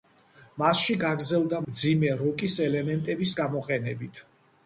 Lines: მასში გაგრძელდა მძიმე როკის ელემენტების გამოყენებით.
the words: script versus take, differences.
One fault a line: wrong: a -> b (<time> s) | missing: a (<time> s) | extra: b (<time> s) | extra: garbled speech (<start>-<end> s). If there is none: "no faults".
no faults